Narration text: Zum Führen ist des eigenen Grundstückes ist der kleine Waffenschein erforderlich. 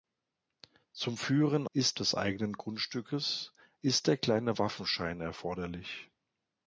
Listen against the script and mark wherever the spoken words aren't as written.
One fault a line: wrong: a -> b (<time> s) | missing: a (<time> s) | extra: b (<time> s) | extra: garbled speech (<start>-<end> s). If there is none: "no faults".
no faults